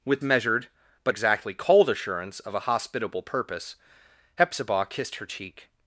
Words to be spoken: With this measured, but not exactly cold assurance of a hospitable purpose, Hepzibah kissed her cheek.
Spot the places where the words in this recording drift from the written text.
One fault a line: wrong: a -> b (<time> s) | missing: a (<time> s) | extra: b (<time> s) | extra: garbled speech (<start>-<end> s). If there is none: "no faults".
missing: this (0.2 s)
missing: not (1.1 s)